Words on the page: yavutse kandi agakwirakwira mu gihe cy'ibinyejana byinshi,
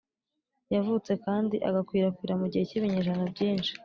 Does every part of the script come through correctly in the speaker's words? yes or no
yes